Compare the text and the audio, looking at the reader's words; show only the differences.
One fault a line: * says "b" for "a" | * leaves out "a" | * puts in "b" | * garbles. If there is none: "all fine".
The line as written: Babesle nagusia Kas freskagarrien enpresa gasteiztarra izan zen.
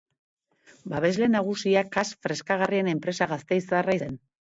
* leaves out "izan"